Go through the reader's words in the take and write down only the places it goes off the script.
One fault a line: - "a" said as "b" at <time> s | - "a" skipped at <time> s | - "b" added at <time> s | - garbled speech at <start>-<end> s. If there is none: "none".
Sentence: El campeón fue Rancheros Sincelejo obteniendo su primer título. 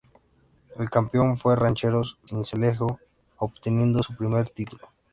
none